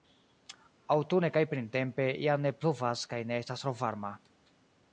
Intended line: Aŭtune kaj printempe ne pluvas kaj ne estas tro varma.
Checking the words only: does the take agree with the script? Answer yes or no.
no